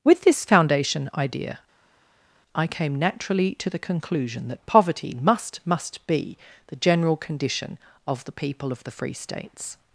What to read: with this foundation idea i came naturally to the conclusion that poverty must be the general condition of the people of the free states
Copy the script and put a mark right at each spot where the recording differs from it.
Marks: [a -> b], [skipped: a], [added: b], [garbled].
with this foundation idea i came naturally to the conclusion that poverty must [added: must] be the general condition of the people of the free states